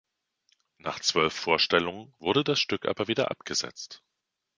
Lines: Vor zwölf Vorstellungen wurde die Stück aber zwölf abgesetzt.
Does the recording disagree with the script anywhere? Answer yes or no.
yes